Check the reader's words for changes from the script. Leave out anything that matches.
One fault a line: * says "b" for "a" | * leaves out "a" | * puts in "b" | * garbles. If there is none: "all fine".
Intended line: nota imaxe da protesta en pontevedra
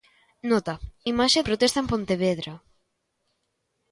* leaves out "da"